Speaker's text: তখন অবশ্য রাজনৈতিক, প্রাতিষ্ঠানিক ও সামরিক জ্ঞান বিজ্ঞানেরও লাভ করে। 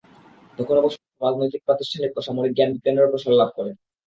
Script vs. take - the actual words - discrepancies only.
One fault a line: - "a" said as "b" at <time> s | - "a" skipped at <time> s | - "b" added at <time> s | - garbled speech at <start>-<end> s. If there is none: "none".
- "প্রসার" added at 3.1 s